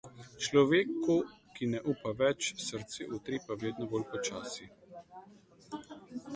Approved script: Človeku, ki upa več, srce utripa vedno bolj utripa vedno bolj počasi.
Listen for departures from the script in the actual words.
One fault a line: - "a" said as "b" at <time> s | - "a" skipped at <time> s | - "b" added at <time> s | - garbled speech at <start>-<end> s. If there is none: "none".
- "ne" added at 1.7 s
- "utripa vedno bolj" skipped at 4.1 s